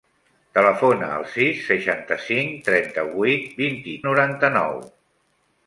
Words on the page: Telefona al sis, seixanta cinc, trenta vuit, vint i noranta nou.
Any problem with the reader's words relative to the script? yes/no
no